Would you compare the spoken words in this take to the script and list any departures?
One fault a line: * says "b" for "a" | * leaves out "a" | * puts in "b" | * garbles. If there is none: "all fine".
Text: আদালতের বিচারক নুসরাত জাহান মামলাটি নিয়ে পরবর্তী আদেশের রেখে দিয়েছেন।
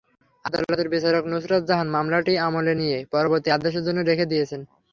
* puts in "আমলে"
* puts in "জন্য"